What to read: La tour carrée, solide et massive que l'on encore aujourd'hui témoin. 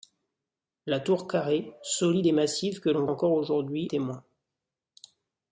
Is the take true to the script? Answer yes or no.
yes